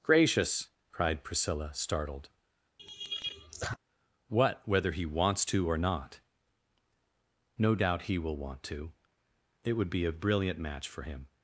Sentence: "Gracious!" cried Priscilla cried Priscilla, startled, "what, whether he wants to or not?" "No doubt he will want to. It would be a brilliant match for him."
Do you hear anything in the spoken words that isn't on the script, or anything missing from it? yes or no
yes